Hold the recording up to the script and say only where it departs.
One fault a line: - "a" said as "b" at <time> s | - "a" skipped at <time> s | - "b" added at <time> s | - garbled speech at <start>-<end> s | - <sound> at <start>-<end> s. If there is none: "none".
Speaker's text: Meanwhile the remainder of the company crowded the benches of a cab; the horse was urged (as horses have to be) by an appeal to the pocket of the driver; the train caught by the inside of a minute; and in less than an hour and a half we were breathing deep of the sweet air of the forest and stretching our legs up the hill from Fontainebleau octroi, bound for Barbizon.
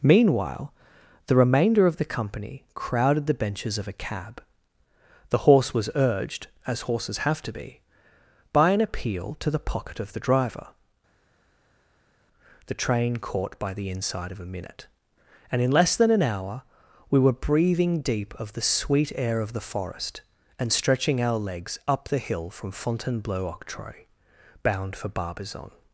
- "and a half" skipped at 16.6 s